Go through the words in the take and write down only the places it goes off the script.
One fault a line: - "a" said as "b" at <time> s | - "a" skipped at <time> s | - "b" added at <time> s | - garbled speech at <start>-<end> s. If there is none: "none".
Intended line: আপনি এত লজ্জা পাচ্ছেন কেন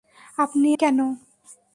- "এত লজ্জা পাচ্ছেন" skipped at 0.7 s